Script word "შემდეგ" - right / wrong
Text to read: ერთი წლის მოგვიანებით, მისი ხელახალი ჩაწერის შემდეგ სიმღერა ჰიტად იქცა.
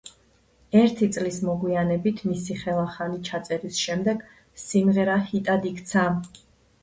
right